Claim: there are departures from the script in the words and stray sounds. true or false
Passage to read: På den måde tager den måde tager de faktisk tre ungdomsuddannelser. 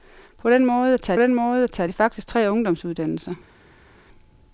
false